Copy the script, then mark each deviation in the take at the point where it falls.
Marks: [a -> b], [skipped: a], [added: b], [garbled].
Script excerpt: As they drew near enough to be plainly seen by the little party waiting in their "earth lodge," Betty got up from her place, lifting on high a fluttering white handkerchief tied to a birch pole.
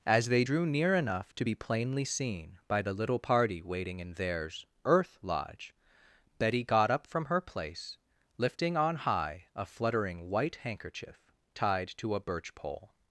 As they drew near enough to be plainly seen by the little party waiting in [their -> theirs] "earth lodge," Betty got up from her place, lifting on high a fluttering white handkerchief tied to a birch pole.